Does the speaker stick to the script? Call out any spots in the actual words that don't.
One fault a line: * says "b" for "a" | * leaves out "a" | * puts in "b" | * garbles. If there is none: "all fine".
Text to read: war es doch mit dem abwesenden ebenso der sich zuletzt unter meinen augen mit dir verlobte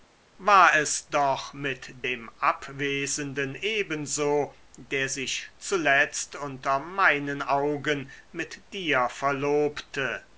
all fine